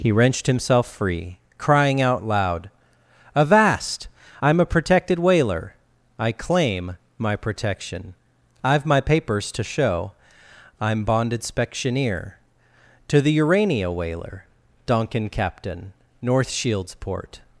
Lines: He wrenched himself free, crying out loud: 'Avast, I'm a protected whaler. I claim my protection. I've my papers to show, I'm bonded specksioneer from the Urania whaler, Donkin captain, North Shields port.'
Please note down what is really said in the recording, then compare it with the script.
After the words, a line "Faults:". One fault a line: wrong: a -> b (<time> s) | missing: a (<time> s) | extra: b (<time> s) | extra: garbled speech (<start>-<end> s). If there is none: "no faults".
He wrenched himself free, crying out loud: 'Avast, I'm a protected whaler. I claim my protection. I've my papers to show, I'm bonded specksioneer to the Urania whaler, Donkin captain, North Shields port.'
Faults:
wrong: from -> to (13.1 s)